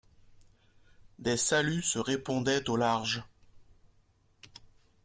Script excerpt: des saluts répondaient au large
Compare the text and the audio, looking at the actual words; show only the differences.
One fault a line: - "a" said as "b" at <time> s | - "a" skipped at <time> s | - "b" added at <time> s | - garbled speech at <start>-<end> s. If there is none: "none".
- "se" added at 1.8 s